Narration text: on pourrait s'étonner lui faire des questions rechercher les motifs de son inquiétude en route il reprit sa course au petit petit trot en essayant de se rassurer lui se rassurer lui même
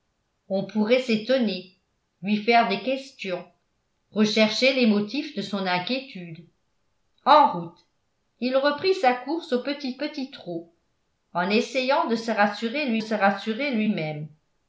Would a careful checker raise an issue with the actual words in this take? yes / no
no